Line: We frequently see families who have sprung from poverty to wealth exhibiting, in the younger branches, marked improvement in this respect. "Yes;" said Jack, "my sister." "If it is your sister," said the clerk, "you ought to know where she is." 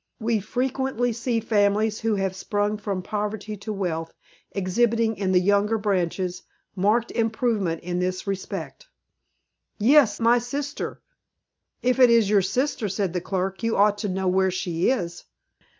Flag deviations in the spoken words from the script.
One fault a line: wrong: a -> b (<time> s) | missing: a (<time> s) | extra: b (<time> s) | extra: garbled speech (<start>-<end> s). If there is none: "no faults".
missing: said Jack (10.2 s)